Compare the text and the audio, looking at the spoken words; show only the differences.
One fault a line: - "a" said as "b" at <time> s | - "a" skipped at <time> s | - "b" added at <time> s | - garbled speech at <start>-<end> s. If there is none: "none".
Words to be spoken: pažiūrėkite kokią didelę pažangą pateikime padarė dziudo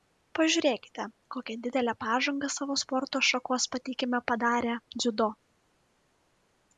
- "savo sporto šakos" added at 2.5 s